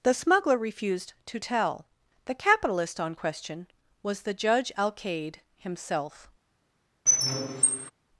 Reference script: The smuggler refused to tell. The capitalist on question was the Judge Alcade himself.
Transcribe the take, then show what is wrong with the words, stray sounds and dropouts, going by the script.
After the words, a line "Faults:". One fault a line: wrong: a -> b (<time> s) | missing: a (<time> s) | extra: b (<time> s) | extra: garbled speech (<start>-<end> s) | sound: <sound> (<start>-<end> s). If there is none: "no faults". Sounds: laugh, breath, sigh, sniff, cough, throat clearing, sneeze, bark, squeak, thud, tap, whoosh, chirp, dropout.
The smuggler refused to tell. The capitalist on question was the Judge Alcade himself.
Faults:
sound: squeak (7.1-7.9 s)